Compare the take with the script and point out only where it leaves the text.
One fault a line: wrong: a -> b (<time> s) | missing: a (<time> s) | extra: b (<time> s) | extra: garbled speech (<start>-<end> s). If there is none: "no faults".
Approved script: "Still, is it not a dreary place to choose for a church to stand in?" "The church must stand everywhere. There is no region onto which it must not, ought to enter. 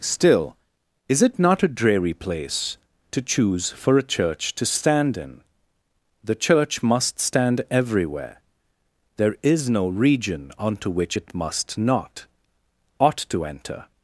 no faults